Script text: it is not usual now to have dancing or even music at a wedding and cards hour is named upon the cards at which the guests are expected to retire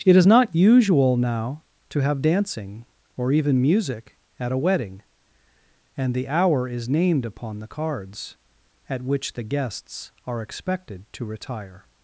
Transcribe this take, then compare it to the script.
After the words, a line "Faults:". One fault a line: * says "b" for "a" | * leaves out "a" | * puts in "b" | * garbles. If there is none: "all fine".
it is not usual now to have dancing or even music at a wedding and the hour is named upon the cards at which the guests are expected to retire
Faults:
* says "the" for "cards"